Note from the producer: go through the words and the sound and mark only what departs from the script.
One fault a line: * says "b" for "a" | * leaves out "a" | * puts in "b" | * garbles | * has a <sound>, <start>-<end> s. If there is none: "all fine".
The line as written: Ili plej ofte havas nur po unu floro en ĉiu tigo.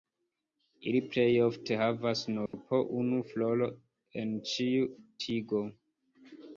* has a dropout, 2.5-2.5 s